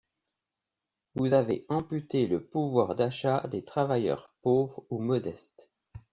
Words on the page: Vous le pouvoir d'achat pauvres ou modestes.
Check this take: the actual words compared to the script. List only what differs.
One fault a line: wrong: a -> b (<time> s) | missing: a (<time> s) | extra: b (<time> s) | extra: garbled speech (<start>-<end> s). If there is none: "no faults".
extra: avez amputé (1.3 s)
extra: des travailleurs (3.5 s)